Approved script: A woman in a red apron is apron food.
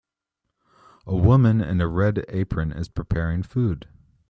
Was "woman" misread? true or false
false